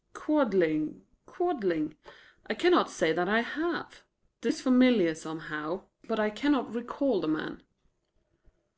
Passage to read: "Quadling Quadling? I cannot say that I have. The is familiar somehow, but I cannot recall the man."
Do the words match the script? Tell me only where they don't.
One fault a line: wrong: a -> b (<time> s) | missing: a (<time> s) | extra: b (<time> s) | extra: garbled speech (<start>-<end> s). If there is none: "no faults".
no faults